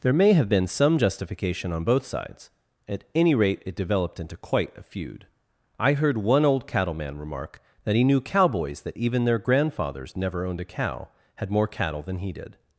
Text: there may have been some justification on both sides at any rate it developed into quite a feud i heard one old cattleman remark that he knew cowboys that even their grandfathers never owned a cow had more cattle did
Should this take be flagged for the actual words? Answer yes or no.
yes